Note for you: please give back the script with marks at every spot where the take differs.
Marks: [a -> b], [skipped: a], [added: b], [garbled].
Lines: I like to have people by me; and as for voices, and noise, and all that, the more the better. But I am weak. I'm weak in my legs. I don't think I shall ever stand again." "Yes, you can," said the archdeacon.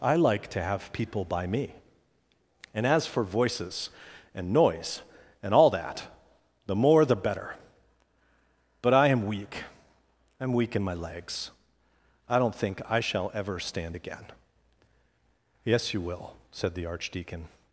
I like to have people by me; and as for voices, and noise, and all that, the more the better. But I am weak. I'm weak in my legs. I don't think I shall ever stand again." "Yes, you [can," -> will] said the archdeacon.